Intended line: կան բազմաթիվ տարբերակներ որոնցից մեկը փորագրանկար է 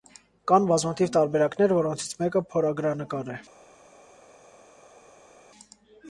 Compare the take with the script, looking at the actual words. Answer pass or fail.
pass